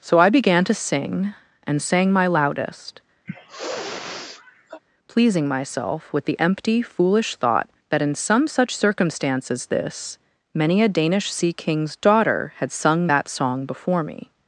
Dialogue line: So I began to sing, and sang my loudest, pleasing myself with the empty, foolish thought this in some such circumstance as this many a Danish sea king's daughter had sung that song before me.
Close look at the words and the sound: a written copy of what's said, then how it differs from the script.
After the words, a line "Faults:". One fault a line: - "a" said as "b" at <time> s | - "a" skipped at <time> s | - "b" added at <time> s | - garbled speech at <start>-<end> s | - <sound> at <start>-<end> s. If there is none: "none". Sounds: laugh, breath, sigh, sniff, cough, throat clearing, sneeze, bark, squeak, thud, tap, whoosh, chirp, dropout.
So I began to sing, and sang my loudest, pleasing myself with the empty, foolish thought that in some such circumstance as this many a Danish sea king's daughter had sung that song before me.
Faults:
- sniff at 3.3-4.8 s
- "this" said as "that" at 7.9 s